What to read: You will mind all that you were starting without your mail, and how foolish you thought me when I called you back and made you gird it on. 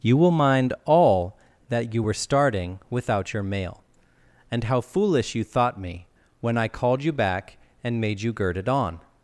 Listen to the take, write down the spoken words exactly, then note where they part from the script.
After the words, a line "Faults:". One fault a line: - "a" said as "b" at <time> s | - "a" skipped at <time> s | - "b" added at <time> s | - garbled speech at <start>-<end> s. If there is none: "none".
You will mind all that you were starting without your mail, and how foolish you thought me when I called you back and made you gird it on.
Faults:
none